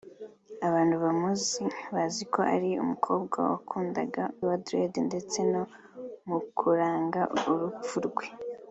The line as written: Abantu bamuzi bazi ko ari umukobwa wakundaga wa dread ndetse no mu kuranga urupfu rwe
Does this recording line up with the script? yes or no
yes